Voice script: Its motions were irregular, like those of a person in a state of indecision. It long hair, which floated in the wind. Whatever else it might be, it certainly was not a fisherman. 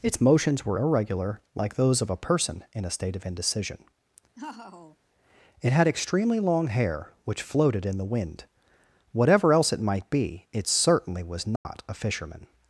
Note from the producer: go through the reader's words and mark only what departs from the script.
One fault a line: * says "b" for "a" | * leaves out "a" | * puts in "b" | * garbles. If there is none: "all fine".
* puts in "had extremely"